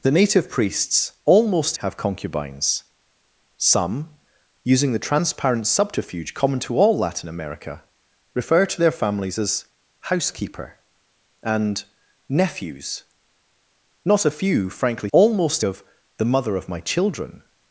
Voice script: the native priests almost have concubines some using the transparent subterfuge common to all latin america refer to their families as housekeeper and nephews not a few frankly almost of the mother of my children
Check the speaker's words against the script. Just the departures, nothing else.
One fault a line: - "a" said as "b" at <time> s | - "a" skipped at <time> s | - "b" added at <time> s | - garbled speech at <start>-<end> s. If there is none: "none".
none